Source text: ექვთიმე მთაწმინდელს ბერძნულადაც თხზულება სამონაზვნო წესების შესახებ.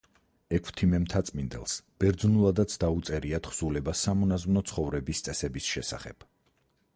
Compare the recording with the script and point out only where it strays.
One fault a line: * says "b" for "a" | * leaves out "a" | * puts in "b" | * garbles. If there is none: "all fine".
* puts in "დაუწერია"
* puts in "ცხოვრების"